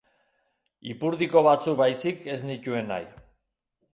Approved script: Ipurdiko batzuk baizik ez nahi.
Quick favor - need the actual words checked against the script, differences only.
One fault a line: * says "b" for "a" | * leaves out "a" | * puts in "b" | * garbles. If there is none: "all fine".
* puts in "nituen"